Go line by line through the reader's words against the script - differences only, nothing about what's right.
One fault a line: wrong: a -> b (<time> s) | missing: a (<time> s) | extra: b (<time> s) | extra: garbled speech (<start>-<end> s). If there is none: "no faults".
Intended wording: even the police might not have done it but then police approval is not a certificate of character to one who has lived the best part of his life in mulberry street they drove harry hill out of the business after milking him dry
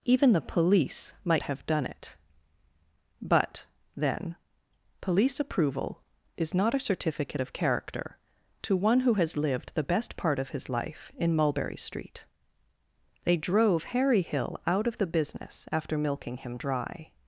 missing: not (1.4 s)